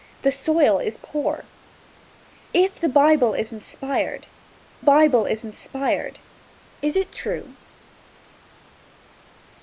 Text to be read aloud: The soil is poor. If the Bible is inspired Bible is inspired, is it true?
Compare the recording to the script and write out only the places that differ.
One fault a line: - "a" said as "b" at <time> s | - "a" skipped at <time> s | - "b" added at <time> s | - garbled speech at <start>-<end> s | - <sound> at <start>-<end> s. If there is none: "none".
none